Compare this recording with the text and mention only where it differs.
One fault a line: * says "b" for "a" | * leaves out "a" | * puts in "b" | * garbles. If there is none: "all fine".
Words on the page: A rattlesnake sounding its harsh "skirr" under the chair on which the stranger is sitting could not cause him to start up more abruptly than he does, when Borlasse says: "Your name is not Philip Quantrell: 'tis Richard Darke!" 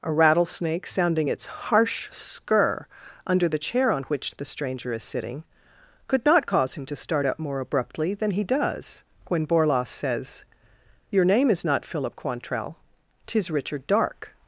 all fine